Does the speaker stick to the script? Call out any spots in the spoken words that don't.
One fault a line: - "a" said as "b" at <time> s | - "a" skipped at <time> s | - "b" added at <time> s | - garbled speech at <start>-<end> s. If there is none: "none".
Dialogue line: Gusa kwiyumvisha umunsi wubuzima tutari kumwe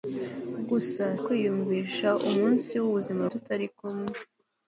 none